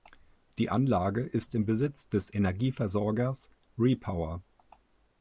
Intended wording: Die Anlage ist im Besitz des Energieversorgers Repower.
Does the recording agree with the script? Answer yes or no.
yes